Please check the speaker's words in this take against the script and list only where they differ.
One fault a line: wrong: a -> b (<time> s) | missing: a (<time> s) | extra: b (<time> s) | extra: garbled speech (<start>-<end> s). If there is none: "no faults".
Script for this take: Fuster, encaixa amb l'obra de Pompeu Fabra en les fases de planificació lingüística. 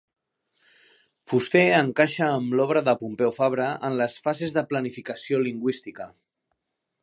no faults